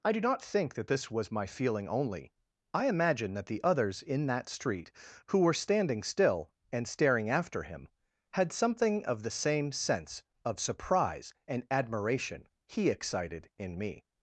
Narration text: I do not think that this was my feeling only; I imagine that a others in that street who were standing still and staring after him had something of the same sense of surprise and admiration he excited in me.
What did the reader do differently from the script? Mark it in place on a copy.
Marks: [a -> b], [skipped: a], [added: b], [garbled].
I do not think that this was my feeling only; I imagine that [a -> the] others in that street who were standing still and staring after him had something of the same sense of surprise and admiration he excited in me.